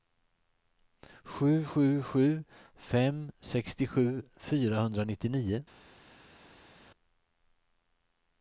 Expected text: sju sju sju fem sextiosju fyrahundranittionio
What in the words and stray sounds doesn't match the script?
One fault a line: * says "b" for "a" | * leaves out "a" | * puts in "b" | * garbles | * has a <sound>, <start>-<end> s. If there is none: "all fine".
all fine